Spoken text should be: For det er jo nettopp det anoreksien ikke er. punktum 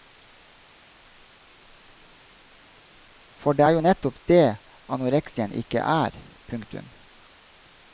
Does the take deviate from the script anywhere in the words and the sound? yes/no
no